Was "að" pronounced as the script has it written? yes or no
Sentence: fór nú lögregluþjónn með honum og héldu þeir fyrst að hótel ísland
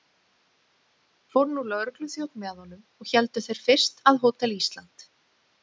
yes